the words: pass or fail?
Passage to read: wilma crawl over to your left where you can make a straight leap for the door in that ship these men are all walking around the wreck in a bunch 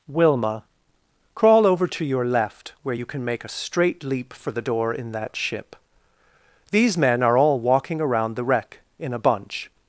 pass